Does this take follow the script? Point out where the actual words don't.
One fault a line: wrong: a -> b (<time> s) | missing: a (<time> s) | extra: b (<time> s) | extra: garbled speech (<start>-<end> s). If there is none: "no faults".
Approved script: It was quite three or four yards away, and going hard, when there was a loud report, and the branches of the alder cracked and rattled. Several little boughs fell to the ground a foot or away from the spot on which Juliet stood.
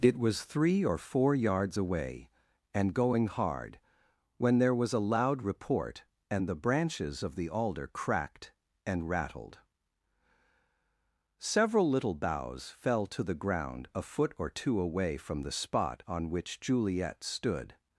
missing: quite (0.4 s)
extra: two (14.5 s)